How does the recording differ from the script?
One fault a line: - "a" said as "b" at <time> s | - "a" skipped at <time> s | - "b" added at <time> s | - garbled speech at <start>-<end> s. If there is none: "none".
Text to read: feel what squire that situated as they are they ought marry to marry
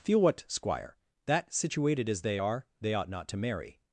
- "marry" said as "not" at 3.1 s